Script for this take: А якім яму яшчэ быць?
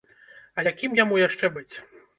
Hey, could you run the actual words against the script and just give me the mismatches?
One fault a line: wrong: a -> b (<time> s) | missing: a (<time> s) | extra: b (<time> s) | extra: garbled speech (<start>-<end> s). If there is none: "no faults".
no faults